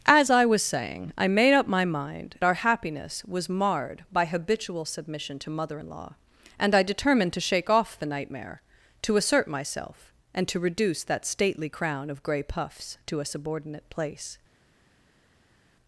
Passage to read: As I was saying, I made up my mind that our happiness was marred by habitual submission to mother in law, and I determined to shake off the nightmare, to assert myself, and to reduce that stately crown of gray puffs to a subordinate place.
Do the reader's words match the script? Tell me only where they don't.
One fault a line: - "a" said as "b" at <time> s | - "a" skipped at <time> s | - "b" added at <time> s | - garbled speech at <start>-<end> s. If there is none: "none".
- "that" skipped at 2.4 s